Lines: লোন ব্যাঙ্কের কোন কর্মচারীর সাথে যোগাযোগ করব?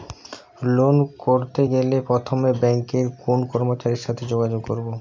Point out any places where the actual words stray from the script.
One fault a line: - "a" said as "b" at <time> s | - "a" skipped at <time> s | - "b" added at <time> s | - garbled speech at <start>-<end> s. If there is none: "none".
- "করতে গেলে প্রথমে" added at 1.2 s